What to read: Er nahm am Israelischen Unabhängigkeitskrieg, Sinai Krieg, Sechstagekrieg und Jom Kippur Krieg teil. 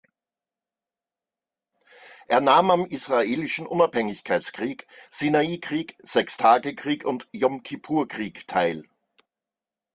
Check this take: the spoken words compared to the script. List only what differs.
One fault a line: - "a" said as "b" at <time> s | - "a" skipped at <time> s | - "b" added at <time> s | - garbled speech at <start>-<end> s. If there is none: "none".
none